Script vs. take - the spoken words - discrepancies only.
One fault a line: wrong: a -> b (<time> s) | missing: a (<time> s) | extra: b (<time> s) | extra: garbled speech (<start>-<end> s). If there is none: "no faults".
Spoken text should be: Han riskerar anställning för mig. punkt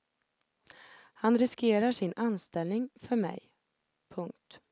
extra: sin (1.9 s)